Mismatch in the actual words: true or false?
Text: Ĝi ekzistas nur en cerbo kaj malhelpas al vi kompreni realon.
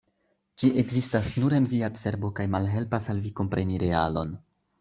true